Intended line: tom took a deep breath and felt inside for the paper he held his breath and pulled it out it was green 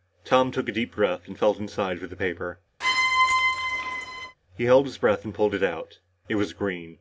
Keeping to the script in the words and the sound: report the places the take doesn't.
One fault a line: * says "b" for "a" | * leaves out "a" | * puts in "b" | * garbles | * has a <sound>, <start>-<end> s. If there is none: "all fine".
* has a squeak, 2.8-4.4 s